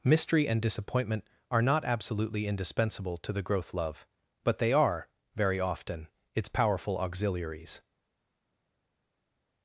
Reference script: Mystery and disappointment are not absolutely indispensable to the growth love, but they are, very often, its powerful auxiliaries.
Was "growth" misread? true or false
false